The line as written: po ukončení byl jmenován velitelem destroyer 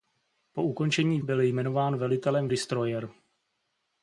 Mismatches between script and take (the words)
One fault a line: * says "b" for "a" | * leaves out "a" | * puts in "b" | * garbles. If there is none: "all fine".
all fine